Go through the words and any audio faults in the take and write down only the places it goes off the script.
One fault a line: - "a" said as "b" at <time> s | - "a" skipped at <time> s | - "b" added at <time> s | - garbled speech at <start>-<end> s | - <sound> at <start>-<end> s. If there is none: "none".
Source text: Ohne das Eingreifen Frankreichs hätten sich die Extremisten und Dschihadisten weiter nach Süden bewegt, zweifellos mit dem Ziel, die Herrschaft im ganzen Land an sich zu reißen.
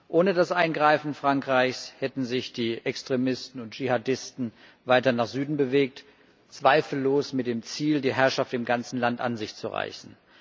none